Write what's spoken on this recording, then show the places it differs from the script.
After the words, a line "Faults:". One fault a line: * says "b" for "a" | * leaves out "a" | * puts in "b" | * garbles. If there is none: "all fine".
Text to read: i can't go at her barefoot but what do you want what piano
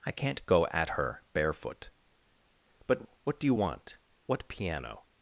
i can't go at her barefoot but what do you want what piano
Faults:
all fine